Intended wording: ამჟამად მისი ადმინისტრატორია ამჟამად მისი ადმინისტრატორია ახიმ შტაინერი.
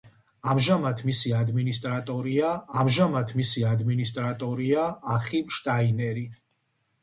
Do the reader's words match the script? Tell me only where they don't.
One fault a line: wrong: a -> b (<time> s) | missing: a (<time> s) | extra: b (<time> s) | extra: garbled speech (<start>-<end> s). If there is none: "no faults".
no faults